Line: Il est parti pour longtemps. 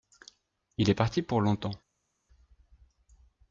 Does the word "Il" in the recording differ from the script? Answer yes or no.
no